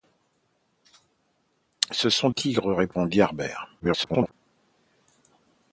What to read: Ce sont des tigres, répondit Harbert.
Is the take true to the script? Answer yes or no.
no